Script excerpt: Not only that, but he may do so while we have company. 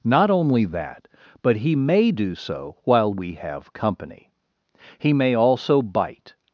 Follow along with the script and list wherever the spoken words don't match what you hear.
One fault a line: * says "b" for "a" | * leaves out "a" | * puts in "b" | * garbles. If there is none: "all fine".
* puts in "He may also bite"